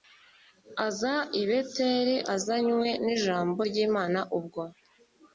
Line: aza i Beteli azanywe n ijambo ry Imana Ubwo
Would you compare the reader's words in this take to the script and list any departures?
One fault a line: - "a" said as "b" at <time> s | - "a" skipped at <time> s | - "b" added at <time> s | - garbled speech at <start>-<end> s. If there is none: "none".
none